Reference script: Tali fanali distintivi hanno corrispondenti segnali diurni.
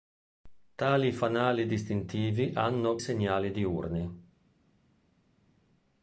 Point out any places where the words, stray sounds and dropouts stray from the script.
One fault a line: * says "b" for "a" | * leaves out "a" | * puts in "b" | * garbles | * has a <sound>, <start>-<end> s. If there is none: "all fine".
* leaves out "corrispondenti"